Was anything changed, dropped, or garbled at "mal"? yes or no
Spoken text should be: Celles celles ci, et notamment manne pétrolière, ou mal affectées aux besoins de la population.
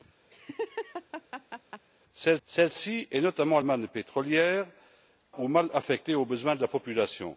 no